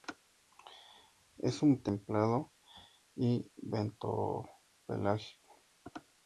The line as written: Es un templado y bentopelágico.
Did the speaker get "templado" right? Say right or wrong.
right